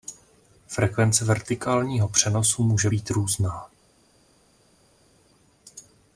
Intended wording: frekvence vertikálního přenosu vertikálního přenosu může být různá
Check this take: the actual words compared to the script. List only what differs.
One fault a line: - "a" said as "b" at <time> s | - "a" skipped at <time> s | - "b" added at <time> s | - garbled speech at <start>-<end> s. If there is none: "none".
- "vertikálního přenosu" skipped at 2.6 s